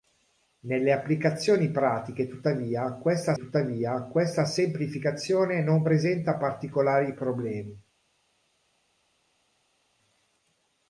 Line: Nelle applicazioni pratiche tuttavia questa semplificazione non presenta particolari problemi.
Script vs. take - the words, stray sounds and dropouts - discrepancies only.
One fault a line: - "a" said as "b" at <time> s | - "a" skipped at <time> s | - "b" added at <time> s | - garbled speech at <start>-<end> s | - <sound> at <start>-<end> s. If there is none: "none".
- "tuttavia questa" added at 3.4 s